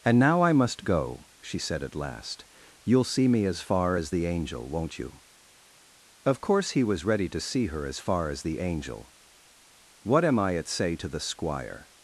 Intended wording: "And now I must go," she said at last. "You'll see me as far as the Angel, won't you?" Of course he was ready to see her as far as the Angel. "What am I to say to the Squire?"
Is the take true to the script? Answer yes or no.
no